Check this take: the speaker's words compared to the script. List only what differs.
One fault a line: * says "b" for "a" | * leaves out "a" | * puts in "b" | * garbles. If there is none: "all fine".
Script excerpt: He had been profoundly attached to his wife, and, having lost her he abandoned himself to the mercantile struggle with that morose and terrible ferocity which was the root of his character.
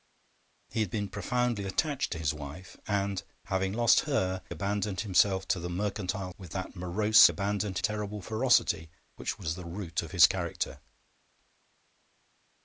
* leaves out "he"
* leaves out "struggle"
* says "abandoned" for "and"